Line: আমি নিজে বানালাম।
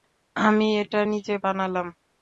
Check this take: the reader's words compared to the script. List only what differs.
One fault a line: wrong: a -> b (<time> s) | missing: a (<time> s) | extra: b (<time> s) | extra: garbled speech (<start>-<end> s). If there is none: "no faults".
extra: এটা (0.8 s)